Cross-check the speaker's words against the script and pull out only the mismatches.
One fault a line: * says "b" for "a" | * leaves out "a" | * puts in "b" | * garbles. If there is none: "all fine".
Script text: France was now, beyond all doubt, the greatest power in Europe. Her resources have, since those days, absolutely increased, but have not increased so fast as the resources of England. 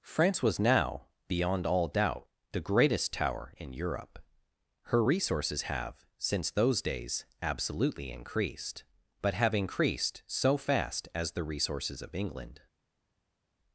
* says "tower" for "power"
* leaves out "not"